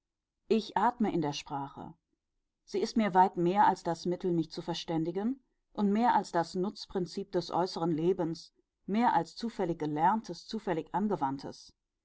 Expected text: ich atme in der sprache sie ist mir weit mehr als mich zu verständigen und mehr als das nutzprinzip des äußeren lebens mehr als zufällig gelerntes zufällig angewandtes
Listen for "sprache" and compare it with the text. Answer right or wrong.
right